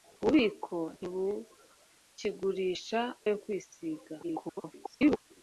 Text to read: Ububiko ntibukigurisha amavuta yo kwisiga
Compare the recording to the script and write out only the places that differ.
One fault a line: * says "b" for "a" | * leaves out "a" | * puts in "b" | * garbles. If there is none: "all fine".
* leaves out "amavuta"
* garbles